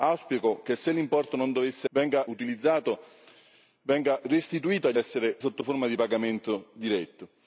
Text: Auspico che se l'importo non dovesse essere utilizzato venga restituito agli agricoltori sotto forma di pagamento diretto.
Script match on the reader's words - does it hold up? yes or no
no